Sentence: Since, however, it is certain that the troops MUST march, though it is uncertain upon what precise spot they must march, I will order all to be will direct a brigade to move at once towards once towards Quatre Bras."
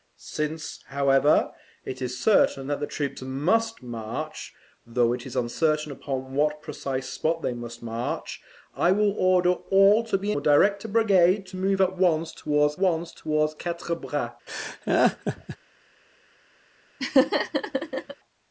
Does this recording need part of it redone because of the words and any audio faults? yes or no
yes